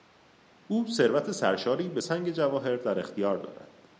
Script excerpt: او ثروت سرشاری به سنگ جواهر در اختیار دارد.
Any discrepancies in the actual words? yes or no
no